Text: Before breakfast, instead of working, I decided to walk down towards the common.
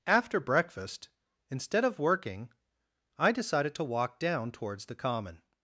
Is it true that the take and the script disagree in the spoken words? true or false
true